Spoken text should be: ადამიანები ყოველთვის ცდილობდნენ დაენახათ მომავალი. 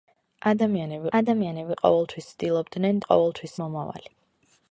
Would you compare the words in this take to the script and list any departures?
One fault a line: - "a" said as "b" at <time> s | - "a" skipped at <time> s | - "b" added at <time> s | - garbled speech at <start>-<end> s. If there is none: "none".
- "ადამიანები" added at 1.2 s
- "დაენახათ" said as "ყოველთვის" at 3.1 s